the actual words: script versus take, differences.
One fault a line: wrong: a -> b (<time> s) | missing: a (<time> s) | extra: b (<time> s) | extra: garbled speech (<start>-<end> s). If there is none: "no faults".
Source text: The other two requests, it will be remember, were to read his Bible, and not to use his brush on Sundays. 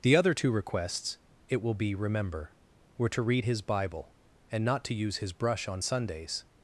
no faults